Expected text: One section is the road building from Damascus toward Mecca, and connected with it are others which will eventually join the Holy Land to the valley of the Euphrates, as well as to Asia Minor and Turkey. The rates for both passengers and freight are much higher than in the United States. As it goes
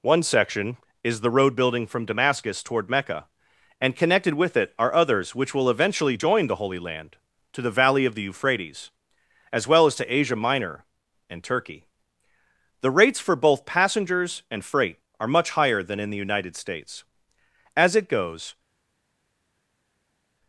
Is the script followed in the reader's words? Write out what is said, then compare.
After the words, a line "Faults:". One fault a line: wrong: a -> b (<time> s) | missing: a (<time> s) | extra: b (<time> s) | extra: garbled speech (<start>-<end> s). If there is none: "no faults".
One section is the road building from Damascus toward Mecca, and connected with it are others which will eventually join the Holy Land to the valley of the Euphrates, as well as to Asia Minor and Turkey. The rates for both passengers and freight are much higher than in the United States. As it goes
Faults:
no faults